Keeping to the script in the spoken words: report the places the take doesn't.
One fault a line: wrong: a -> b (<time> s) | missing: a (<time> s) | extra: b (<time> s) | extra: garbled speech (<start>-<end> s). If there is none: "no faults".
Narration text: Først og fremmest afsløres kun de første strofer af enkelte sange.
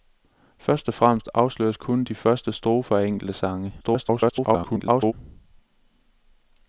extra: garbled speech (3.8-5.1 s)